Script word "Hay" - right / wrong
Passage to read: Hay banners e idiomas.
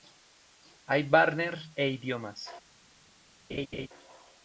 right